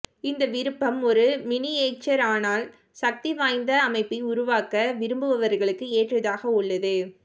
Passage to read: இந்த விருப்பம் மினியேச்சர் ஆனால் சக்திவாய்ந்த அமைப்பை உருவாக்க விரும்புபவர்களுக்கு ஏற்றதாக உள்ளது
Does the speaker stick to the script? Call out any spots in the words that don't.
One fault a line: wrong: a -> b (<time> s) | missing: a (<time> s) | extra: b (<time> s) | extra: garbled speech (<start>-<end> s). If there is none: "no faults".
extra: ஒரு (1.0 s)